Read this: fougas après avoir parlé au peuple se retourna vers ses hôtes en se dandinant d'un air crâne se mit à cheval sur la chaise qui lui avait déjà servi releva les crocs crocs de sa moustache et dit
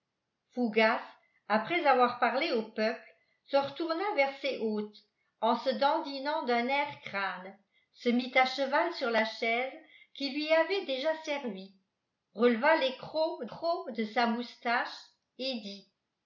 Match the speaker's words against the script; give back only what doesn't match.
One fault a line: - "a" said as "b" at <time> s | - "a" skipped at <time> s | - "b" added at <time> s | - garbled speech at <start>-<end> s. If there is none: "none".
none